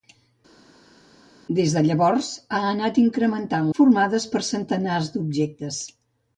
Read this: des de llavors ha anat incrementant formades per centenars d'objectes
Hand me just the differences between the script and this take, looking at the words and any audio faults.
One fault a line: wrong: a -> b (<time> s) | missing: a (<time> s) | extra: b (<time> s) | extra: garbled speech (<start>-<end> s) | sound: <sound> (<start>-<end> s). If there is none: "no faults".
no faults